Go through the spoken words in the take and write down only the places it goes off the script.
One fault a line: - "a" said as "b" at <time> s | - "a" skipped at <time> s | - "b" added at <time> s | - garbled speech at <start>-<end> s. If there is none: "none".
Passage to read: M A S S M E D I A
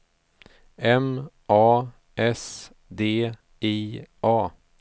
- "S M E" skipped at 2.7 s